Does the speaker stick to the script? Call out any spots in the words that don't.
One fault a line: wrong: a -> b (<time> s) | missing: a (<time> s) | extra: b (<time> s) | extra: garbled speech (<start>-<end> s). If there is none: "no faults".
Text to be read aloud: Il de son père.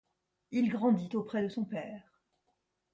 extra: grandit auprès (0.7 s)